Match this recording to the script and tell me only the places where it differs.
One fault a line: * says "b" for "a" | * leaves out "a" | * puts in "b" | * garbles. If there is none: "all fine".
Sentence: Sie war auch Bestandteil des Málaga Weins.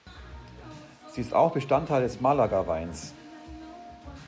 * says "ist" for "war"